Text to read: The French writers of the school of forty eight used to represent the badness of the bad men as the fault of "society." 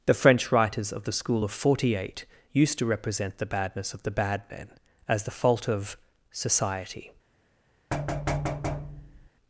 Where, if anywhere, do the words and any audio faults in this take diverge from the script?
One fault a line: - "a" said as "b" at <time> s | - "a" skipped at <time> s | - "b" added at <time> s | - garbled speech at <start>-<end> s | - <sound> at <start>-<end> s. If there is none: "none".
- thud at 7.9-9.3 s